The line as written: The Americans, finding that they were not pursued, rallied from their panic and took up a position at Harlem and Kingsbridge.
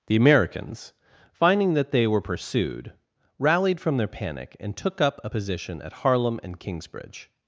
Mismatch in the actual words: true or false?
true